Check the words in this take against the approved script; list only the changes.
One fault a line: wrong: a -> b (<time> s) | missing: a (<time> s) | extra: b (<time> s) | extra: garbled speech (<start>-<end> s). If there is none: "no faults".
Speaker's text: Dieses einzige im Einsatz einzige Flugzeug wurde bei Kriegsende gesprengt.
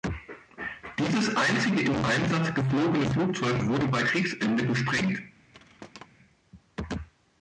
wrong: einzige -> geflogene (2.5 s)